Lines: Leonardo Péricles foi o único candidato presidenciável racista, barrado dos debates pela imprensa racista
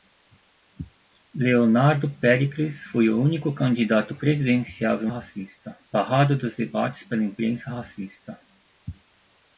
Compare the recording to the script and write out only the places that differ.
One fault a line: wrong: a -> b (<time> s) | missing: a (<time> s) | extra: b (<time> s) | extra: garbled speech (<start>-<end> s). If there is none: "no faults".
no faults